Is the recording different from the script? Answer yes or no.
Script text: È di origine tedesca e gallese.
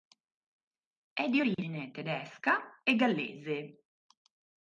no